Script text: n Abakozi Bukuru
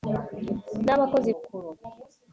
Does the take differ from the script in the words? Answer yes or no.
no